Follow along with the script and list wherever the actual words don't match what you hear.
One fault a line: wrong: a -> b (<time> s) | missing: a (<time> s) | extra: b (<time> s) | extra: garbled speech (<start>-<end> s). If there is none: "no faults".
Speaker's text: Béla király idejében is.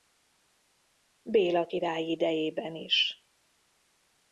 no faults